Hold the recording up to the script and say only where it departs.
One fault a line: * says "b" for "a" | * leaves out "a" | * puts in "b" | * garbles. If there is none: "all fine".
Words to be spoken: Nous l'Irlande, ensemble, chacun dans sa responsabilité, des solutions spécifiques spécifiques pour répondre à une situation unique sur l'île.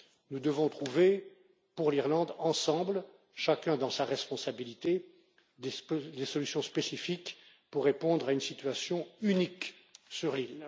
* puts in "devons trouver pour"
* leaves out "spécifiques"